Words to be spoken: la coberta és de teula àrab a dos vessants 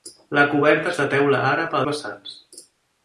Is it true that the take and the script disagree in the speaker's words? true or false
true